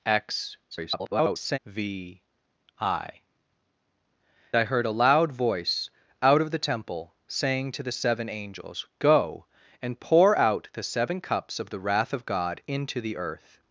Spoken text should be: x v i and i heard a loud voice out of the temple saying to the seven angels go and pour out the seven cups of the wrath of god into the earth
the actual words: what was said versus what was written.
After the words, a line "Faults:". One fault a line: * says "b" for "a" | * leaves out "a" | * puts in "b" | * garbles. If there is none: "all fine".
x [garbled] v i i heard a loud voice out of the temple saying to the seven angels go and pour out the seven cups of the wrath of god into the earth
Faults:
* garbles
* leaves out "and"